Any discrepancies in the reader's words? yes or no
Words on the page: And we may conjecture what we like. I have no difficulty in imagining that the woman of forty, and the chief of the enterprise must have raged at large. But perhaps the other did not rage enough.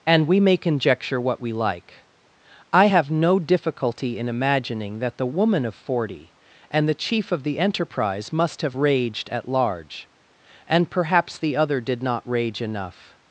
yes